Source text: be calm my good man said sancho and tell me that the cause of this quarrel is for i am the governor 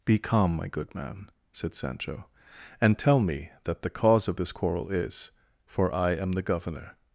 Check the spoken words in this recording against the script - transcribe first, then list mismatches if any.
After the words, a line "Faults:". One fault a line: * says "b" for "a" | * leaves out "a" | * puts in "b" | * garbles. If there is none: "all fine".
be calm my good man said sancho and tell me that the cause of this quarrel is for i am the governor
Faults:
all fine